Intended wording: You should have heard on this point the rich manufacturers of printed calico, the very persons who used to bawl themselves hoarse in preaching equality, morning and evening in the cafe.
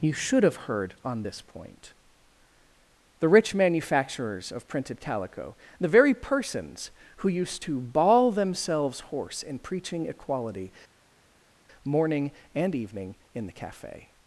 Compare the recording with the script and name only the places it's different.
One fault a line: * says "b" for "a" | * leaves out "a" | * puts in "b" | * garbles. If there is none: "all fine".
all fine